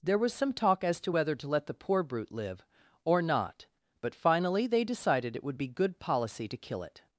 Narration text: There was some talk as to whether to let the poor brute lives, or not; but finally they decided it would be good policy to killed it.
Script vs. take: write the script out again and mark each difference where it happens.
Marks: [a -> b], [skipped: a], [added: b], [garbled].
There was some talk as to whether to let the poor brute [lives, -> live] or not; but finally they decided it would be good policy to [killed -> kill] it.